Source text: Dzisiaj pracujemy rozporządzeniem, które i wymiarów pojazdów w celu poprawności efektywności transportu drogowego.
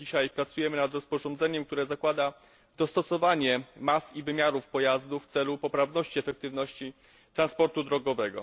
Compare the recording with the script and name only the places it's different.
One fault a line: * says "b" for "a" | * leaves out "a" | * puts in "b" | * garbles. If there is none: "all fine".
* puts in "nad"
* puts in "zakłada dostosowanie mas"